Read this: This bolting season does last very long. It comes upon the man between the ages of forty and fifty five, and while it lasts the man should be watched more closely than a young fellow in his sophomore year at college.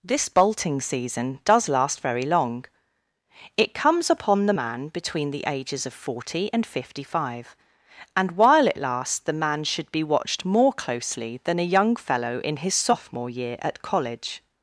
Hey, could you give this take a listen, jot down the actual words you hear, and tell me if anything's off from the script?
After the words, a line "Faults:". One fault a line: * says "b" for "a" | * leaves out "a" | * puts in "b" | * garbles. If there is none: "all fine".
This bolting season does last very long. It comes upon the man between the ages of forty and fifty five, and while it lasts the man should be watched more closely than a young fellow in his sophomore year at college.
Faults:
all fine